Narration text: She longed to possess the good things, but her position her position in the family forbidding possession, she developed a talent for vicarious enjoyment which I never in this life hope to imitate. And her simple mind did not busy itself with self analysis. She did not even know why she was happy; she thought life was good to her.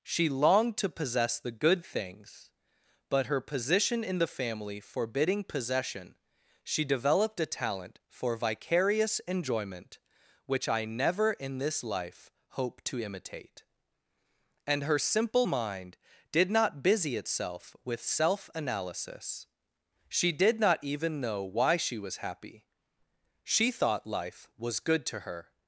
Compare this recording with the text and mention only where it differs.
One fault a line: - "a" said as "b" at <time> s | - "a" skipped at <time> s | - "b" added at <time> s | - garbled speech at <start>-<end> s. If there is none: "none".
- "her position" skipped at 4.0 s